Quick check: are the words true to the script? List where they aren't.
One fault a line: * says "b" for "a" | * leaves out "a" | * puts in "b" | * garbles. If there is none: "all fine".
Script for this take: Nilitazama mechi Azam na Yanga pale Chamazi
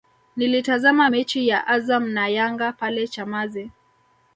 * puts in "ya"